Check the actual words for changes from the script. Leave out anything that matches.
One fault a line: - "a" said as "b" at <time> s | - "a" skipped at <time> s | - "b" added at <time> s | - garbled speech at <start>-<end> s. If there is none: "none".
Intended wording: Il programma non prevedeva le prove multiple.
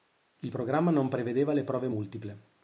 none